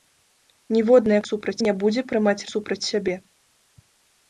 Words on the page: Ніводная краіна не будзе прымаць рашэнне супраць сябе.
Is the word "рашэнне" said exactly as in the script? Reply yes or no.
no